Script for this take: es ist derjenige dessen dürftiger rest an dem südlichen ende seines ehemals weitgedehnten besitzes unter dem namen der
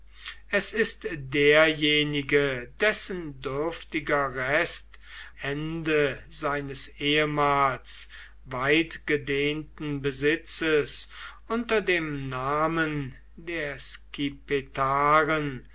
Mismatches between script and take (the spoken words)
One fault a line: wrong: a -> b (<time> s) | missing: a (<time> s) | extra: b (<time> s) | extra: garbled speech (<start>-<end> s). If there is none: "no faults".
missing: an dem südlichen (5.0 s)